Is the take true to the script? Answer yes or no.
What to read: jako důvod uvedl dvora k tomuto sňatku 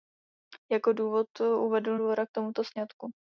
yes